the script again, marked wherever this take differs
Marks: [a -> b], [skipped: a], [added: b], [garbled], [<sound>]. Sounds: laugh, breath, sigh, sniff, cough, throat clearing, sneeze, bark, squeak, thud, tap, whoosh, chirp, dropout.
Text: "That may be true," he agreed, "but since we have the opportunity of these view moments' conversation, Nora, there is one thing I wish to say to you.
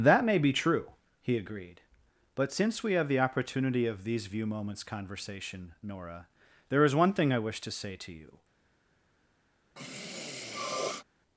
"That may be true," he agreed, "but since we have the opportunity of these view moments' conversation, Nora, there is one thing I wish to say to you. [sniff]